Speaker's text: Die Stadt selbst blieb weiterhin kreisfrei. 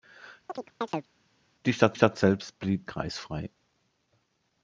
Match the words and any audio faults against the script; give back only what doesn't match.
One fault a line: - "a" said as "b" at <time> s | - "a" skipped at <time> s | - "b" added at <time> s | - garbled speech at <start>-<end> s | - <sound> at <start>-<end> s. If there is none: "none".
- chirp at 0.5-1.1 s
- "Stadt" added at 1.9 s
- "weiterhin" skipped at 2.9 s